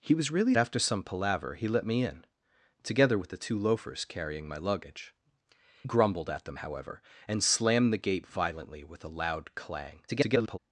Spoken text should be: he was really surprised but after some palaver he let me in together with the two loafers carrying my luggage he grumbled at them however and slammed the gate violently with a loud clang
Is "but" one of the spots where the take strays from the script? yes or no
yes